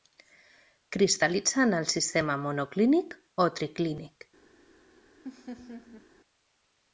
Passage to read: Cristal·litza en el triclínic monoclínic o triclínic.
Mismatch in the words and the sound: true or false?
true